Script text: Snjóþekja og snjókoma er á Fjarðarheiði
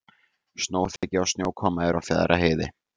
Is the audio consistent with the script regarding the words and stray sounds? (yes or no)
no